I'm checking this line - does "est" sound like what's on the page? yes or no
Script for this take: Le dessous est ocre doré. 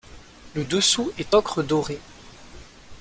yes